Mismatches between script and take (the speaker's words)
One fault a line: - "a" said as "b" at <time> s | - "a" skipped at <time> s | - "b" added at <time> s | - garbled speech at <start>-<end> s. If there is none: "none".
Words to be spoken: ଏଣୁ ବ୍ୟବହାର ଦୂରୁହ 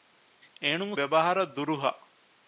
none